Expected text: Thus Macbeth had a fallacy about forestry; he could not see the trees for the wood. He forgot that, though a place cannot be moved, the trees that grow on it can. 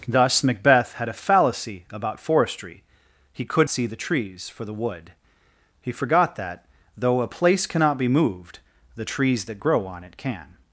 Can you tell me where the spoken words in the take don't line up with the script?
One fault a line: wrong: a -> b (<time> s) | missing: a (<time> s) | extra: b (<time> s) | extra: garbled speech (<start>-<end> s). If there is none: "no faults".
missing: not (3.7 s)